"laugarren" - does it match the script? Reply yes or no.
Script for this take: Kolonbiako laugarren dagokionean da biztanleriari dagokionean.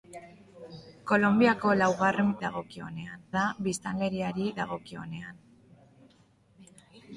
yes